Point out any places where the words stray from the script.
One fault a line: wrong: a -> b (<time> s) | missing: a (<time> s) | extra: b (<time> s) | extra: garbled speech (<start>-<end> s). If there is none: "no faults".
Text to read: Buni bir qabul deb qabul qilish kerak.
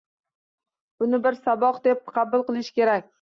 wrong: qabul -> saboq (1.4 s)